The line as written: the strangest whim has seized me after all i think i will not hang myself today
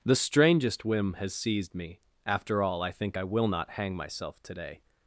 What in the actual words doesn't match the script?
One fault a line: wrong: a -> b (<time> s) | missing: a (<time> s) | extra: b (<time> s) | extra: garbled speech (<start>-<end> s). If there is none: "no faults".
no faults